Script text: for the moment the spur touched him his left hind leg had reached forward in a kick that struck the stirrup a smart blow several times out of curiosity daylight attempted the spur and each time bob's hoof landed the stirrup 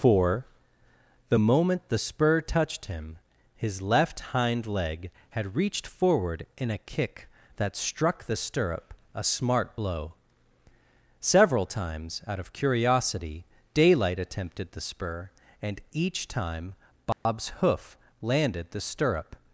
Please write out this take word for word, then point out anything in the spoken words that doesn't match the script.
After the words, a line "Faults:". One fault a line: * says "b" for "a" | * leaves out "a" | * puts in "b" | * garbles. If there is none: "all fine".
for the moment the spur touched him his left hind leg had reached forward in a kick that struck the stirrup a smart blow several times out of curiosity daylight attempted the spur and each time bob's hoof landed the stirrup
Faults:
all fine